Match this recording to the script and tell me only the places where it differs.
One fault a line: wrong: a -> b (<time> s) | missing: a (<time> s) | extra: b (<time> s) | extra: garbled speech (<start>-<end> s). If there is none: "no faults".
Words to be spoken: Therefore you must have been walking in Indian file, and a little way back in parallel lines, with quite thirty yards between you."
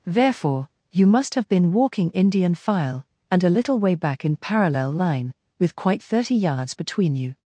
missing: in (2.1 s)
wrong: lines -> line (4.9 s)